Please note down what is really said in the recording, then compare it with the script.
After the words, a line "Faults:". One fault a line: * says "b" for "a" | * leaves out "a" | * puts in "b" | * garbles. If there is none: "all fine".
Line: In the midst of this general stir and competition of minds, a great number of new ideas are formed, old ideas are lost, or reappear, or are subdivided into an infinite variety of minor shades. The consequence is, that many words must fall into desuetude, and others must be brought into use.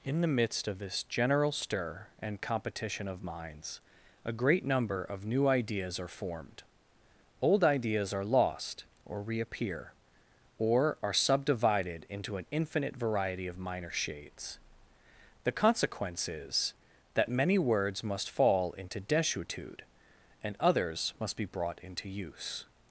In the midst of this general stir and competition of minds, a great number of new ideas are formed, old ideas are lost, or reappear, or are subdivided into an infinite variety of minor shades. The consequence is, that many words must fall into desuetude, and others must be brought into use.
Faults:
all fine